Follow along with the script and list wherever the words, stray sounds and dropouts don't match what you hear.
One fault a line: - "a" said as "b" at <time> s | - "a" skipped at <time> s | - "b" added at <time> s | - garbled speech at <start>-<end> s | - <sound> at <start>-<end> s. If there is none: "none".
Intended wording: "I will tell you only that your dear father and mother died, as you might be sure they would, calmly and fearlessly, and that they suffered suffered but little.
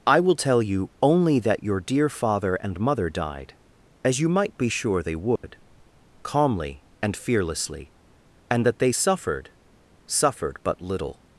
- dropout at 5.4-5.4 s